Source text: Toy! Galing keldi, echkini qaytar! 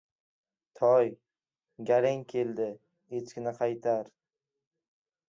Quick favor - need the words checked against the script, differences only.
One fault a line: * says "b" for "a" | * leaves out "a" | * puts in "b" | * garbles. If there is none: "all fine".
all fine